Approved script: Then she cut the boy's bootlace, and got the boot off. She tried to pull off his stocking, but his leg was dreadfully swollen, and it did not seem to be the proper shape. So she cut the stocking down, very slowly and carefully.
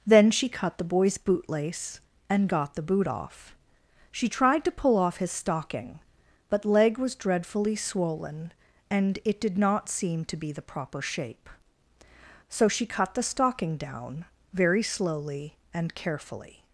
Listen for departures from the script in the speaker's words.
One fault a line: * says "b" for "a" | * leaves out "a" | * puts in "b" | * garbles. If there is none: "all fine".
* leaves out "his"